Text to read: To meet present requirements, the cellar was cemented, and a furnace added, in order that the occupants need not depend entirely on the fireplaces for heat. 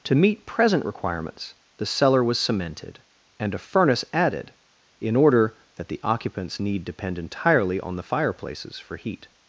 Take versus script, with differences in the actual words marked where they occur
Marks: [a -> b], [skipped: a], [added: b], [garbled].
To meet present requirements, the cellar was cemented, and a furnace added, in order that the occupants need [skipped: not] depend entirely on the fireplaces for heat.